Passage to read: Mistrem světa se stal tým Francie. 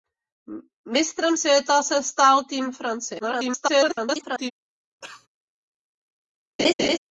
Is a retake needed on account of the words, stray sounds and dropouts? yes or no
yes